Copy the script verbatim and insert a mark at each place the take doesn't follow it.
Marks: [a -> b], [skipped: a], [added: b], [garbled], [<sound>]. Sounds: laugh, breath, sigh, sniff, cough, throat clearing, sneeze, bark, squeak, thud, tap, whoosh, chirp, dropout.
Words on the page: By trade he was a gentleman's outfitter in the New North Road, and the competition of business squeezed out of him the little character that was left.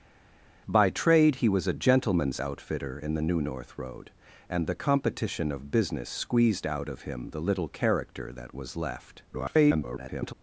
By trade he was a gentleman's outfitter in the New North Road, and the competition of business squeezed out of him the little character that was left. [garbled]